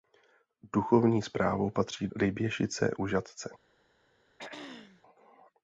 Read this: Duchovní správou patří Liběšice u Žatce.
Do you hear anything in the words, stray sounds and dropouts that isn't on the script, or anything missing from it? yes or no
yes